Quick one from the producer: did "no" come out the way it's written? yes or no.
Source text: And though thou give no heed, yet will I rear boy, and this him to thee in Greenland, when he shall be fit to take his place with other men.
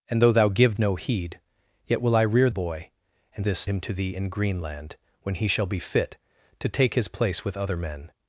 yes